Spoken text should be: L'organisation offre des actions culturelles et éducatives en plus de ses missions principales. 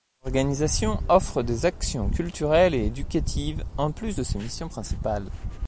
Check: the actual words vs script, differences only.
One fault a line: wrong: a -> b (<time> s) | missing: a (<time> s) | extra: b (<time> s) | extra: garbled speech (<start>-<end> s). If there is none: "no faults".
no faults